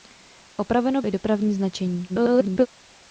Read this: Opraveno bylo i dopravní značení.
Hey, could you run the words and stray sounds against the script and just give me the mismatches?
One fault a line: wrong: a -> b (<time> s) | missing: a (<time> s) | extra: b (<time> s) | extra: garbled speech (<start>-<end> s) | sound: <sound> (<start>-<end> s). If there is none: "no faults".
missing: bylo (1.0 s)
extra: garbled speech (2.1-2.7 s)